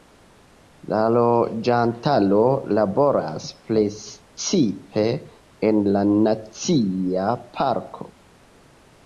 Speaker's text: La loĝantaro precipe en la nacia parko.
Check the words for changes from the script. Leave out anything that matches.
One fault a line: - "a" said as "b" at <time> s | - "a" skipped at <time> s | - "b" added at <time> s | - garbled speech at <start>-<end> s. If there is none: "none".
- "laboras" added at 2.8 s